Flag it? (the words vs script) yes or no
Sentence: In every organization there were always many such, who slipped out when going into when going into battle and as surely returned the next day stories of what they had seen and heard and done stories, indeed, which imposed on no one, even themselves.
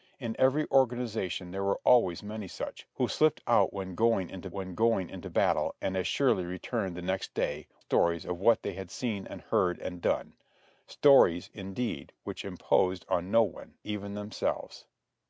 no